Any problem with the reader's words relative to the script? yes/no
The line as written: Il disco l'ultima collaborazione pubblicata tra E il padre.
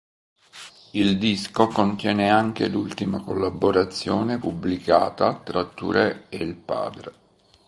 yes